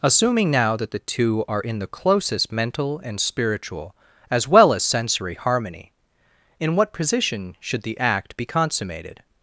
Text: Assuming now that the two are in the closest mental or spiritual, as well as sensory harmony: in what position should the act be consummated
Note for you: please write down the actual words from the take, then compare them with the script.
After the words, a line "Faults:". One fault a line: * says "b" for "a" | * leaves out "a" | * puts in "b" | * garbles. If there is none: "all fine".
Assuming now that the two are in the closest mental and spiritual, as well as sensory harmony: in what position should the act be consummated
Faults:
* says "and" for "or"